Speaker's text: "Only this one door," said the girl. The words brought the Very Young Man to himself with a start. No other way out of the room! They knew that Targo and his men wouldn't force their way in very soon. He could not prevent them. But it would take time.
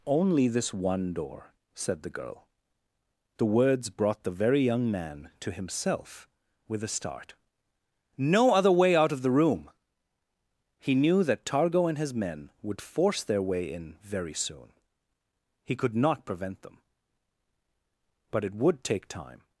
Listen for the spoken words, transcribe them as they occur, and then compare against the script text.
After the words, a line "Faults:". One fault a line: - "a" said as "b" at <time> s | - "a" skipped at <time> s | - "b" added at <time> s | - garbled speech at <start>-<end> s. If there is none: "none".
"Only this one door," said the girl. The words brought the Very Young Man to himself with a start. No other way out of the room! He knew that Targo and his men would force their way in very soon. He could not prevent them. But it would take time.
Faults:
- "They" said as "He" at 10.8 s
- "wouldn't" said as "would" at 12.6 s